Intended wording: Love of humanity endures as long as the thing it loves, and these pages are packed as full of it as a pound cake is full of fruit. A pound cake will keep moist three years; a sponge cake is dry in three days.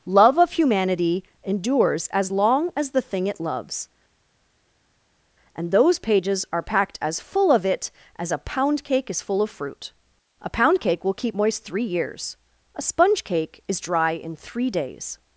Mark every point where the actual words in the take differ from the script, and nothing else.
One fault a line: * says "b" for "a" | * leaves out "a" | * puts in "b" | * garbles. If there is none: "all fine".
* says "those" for "these"